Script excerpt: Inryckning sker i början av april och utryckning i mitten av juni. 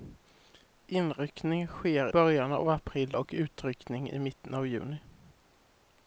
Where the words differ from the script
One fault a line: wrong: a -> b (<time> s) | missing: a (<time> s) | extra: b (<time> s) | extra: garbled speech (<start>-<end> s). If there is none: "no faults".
missing: i (2.1 s)